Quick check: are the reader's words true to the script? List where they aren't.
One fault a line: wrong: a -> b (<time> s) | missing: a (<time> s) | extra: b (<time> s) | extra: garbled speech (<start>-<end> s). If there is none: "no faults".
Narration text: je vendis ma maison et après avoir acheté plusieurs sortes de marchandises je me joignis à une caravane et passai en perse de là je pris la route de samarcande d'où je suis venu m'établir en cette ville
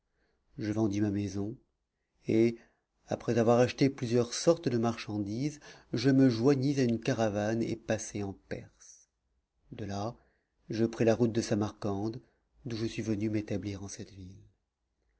no faults